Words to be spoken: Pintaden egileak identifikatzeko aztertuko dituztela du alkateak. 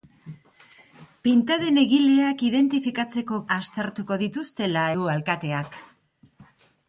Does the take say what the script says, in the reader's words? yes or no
yes